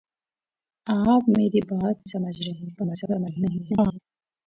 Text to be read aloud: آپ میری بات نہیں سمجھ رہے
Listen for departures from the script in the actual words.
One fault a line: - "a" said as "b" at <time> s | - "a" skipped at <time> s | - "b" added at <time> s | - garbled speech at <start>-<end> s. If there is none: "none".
- "نہیں" skipped at 2.1 s
- garbled speech at 2.8-4.0 s